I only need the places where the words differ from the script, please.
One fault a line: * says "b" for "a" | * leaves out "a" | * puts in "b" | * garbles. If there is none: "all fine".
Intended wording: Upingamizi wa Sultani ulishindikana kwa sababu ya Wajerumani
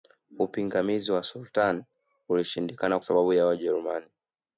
* leaves out "kwa"